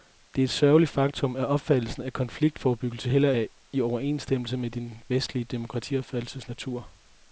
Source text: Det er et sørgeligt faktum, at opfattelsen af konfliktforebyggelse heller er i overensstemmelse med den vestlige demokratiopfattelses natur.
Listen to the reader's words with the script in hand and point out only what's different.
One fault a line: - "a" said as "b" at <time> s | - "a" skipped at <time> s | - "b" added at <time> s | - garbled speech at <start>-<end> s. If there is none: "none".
none